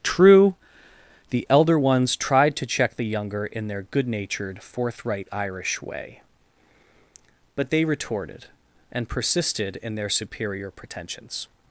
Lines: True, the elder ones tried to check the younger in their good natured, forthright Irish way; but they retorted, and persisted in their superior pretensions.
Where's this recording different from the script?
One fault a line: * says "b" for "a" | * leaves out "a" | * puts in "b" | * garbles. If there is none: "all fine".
all fine